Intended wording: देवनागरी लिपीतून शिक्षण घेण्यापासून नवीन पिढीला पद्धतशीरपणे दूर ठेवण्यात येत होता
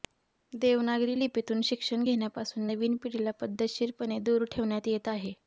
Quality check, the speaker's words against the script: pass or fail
fail